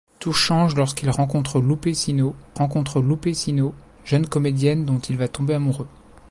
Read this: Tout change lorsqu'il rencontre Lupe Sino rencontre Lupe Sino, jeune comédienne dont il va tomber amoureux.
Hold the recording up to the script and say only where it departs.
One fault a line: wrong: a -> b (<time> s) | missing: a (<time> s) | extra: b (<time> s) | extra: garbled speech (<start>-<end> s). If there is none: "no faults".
no faults